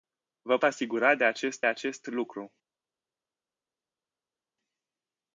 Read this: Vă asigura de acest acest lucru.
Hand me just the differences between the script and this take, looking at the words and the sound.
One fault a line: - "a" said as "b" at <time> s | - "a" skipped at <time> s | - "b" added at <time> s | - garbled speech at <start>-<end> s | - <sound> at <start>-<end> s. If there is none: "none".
none